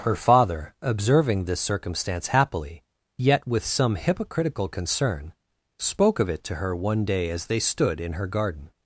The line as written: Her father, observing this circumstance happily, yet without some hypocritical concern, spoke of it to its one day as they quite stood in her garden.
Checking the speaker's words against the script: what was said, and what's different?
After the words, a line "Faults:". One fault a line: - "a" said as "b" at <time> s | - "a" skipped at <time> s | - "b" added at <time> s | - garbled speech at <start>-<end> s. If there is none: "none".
Her father, observing this circumstance happily, yet with some hypocritical concern, spoke of it to her one day as they stood in her garden.
Faults:
- "without" said as "with" at 3.5 s
- "its" said as "her" at 6.5 s
- "quite" skipped at 7.6 s